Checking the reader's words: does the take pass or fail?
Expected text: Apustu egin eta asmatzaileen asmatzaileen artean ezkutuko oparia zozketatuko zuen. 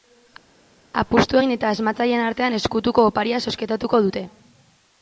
fail